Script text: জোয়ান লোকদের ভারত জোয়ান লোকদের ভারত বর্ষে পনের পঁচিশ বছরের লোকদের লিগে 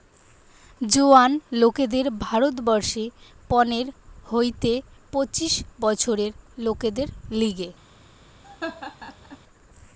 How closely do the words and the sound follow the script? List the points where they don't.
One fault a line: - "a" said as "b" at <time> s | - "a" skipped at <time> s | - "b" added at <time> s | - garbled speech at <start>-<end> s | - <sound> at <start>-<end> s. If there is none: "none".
- "জোয়ান লোকদের ভারত" skipped at 2.5 s
- "হইতে" added at 4.2 s
- laugh at 8.4-9.4 s